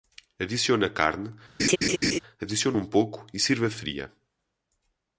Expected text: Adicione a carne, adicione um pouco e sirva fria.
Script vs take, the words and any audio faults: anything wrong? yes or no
yes